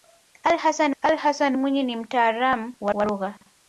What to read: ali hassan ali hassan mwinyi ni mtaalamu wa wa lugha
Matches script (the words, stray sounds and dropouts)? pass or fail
pass